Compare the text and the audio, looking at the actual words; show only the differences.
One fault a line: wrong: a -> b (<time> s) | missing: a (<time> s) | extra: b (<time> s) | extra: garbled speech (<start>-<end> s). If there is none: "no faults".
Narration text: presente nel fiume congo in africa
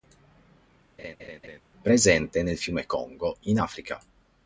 no faults